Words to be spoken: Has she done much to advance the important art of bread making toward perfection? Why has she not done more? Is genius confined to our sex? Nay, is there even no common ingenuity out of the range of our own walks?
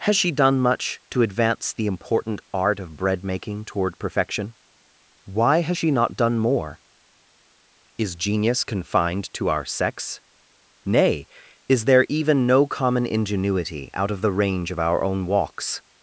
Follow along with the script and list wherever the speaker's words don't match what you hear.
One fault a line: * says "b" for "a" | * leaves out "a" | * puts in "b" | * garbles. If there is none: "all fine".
all fine